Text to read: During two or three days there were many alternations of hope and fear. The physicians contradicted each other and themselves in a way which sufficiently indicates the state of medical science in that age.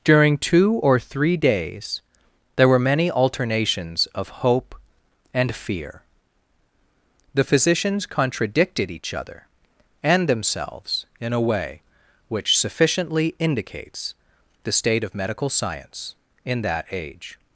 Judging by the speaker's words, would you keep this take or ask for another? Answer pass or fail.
pass